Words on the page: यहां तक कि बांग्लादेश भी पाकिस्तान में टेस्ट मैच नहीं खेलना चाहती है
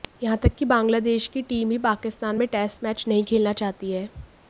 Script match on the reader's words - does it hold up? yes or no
no